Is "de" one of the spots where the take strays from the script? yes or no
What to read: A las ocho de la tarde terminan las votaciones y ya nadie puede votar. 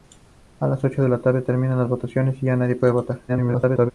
no